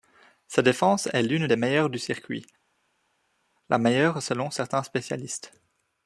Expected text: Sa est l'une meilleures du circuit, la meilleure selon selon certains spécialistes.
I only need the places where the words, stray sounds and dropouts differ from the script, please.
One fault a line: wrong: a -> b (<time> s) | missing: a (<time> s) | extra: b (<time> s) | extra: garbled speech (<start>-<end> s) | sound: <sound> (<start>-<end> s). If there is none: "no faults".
extra: défense (0.6 s)
extra: des (1.4 s)
missing: selon (4.5 s)